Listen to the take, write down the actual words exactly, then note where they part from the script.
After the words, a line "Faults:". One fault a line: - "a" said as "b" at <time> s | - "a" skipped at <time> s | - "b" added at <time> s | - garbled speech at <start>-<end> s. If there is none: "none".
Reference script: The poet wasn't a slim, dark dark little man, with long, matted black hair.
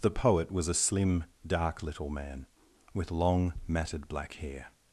The poet was a slim, dark little man, with long, matted black hair.
Faults:
- "wasn't" said as "was" at 0.5 s
- "dark" skipped at 1.8 s